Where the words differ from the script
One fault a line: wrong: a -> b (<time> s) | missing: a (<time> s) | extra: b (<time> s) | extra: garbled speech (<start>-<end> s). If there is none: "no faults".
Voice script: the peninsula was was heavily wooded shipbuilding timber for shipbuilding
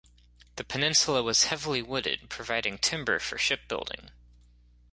missing: was (1.4 s)
wrong: shipbuilding -> providing (2.3 s)